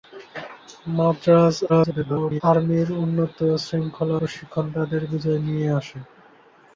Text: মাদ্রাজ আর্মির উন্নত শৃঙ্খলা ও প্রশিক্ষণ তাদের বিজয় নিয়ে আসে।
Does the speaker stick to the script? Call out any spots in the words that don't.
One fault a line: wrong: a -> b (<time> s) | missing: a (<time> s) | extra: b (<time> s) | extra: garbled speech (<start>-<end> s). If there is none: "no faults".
extra: garbled speech (1.7-2.4 s)
missing: ও (4.2 s)